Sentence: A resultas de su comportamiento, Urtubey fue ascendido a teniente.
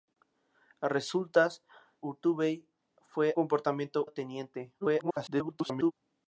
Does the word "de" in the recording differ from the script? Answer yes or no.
yes